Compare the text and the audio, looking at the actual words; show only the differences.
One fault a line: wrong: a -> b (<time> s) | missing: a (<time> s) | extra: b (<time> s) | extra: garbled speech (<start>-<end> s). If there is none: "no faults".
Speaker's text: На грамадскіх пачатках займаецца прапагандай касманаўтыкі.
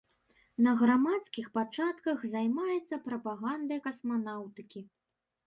no faults